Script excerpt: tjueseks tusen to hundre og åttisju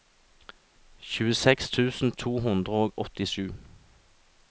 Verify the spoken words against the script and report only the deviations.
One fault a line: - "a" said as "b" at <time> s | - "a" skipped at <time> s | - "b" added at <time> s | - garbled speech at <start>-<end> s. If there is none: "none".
none